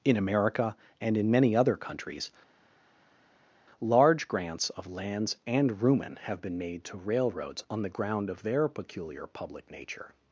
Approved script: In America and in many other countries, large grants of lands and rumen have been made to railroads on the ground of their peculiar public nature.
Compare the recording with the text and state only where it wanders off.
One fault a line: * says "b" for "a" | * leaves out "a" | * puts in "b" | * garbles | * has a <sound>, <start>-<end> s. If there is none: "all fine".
all fine